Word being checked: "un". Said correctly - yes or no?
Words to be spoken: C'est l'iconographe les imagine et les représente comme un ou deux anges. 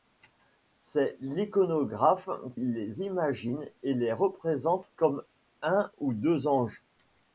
yes